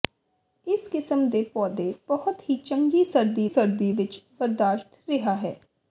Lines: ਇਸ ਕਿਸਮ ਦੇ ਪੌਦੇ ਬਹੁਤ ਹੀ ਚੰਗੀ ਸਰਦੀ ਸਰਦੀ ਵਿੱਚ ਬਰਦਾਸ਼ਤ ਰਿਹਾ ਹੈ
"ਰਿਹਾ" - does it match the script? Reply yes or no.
yes